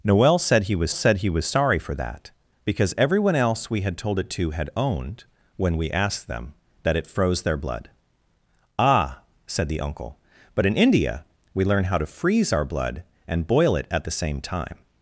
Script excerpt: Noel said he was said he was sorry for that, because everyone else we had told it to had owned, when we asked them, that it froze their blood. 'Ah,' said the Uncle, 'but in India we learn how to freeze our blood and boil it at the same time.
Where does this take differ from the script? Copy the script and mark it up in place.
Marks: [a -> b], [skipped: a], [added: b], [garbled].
Noel said he was said he was sorry for that, because everyone else we had told it to had owned, when we asked them, that it froze their blood. 'Ah,' said the Uncle, 'but in India we learn how to freeze our blood and boil it at the same time.